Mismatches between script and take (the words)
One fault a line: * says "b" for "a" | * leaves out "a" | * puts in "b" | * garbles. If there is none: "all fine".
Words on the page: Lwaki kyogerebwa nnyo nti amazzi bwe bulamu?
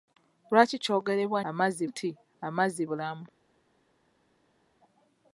* says "amazzi" for "nnyo"
* leaves out "bwe"